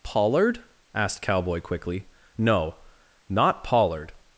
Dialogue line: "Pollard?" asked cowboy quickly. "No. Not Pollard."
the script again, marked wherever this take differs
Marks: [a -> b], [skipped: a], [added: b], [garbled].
"Pollard?" asked cowboy quickly. "No. Not Pollard."